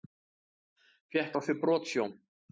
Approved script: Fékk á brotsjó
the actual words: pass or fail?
fail